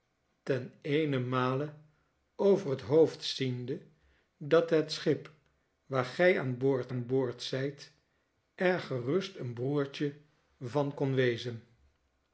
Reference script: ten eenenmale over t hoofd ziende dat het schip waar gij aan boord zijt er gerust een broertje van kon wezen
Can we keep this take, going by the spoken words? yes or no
no